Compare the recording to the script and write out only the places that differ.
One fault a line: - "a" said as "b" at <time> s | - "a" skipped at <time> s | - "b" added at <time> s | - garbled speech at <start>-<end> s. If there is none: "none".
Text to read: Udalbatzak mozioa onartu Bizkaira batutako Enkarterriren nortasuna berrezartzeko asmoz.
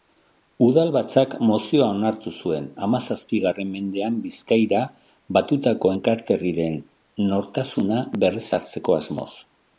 - "zuen hamazazpigarren mendean" added at 2.5 s